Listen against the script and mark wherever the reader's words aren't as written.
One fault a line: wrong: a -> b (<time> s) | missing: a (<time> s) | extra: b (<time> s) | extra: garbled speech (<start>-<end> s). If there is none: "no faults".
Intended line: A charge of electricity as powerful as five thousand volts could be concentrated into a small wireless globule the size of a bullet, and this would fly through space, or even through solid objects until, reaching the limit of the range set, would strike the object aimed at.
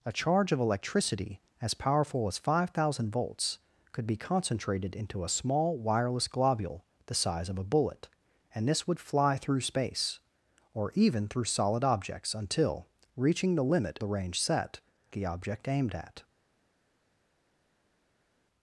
missing: of (14.0 s)
missing: would strike (14.8 s)